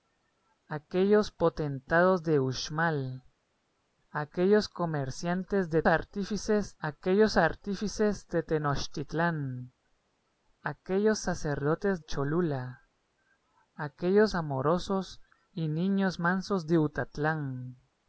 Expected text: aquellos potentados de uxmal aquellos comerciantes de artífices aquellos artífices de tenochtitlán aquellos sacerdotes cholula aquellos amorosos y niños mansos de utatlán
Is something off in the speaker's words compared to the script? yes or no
no